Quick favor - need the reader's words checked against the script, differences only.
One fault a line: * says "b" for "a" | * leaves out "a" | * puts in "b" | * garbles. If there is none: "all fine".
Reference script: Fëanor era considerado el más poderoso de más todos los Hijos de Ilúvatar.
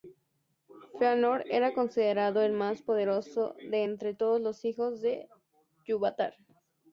* says "entre" for "más"